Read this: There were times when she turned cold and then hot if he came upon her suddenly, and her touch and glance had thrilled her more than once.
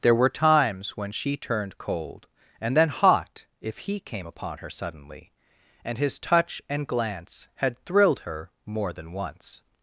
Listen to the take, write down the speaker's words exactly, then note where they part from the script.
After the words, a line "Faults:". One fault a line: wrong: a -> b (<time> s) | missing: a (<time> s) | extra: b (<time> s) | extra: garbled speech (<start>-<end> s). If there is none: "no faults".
There were times when she turned cold and then hot if he came upon her suddenly, and his touch and glance had thrilled her more than once.
Faults:
wrong: her -> his (6.0 s)